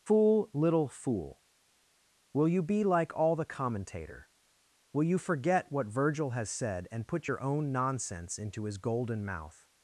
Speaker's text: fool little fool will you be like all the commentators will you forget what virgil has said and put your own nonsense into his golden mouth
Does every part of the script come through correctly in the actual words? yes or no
no